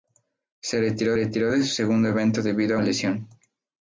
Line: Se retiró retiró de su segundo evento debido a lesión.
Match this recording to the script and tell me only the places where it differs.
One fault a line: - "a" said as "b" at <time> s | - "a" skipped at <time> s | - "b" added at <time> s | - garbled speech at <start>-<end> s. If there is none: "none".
none